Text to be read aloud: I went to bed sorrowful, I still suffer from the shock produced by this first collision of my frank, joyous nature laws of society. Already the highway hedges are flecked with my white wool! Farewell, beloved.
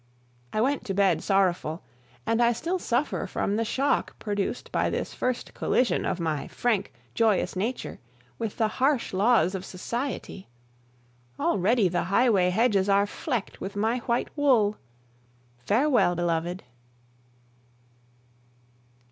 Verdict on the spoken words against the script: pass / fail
fail